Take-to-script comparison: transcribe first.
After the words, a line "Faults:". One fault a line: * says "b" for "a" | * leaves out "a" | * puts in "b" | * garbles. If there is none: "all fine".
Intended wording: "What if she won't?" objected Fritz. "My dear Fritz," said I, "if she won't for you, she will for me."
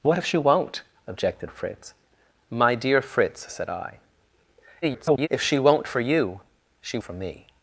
"What if she won't?" objected Fritz. "My dear Fritz," said I, [garbled] "if she won't for you, she for me."
Faults:
* garbles
* leaves out "will"